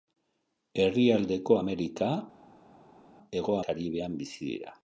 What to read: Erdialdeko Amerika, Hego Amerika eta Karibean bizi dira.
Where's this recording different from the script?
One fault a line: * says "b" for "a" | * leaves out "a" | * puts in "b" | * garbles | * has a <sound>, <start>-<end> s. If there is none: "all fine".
* leaves out "Amerika eta"